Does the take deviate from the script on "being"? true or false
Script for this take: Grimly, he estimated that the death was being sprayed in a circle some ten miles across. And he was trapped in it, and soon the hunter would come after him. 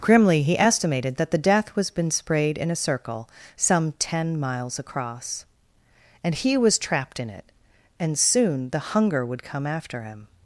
true